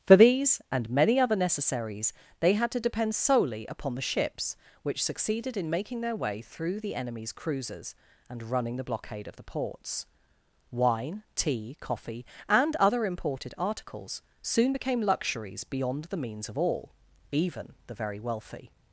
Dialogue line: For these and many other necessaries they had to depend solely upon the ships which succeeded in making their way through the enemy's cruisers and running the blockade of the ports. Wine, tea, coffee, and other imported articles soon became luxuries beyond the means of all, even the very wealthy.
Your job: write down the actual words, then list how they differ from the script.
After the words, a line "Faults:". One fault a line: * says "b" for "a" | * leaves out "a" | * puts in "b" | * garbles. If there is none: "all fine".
For these and many other necessaries they had to depend solely upon the ships which succeeded in making their way through the enemy's cruisers and running the blockade of the ports. Wine, tea, coffee, and other imported articles soon became luxuries beyond the means of all, even the very wealthy.
Faults:
all fine